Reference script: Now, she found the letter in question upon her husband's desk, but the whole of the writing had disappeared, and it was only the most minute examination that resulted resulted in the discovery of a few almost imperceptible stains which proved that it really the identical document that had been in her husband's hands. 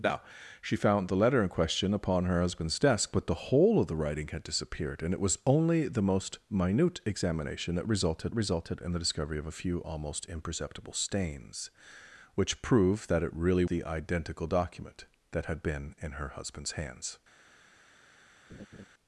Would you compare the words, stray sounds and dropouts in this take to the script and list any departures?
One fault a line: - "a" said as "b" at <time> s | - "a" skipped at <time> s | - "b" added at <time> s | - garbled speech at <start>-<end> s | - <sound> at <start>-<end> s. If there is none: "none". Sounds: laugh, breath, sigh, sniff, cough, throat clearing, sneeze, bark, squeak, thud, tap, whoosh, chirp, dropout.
- laugh at 18.5-18.9 s